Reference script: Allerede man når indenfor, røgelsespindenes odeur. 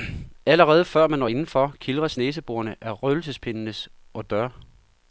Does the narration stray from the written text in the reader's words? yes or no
yes